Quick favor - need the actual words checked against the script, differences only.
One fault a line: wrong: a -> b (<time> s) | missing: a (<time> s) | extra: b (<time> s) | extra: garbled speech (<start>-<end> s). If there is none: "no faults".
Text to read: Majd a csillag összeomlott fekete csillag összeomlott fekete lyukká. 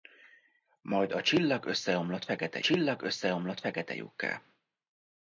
no faults